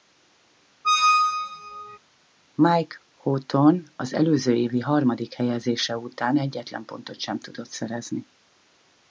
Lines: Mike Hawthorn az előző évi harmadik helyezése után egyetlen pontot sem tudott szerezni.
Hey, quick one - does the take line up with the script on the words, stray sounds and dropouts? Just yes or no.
no